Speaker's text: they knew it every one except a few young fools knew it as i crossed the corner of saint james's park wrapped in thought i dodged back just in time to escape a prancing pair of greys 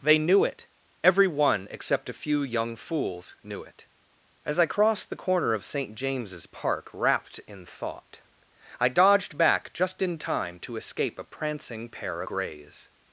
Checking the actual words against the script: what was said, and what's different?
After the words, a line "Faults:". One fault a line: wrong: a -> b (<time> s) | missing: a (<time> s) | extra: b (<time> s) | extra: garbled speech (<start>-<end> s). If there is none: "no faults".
they knew it every one except a few young fools knew it as i crossed the corner of saint james's park wrapped in thought i dodged back just in time to escape a prancing pair greys
Faults:
missing: of (12.2 s)